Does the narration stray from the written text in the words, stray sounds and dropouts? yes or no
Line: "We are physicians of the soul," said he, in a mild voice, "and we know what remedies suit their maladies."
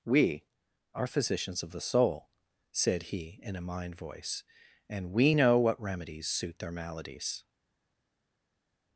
yes